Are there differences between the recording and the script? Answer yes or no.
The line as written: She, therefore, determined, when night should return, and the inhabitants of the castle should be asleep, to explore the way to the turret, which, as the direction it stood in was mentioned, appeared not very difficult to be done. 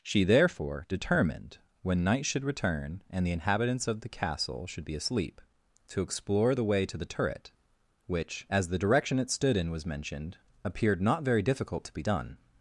no